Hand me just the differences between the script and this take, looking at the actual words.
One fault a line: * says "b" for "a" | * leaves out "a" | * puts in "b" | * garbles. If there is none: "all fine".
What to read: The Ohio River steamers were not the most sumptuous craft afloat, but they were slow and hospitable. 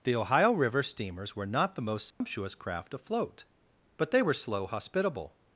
* leaves out "and"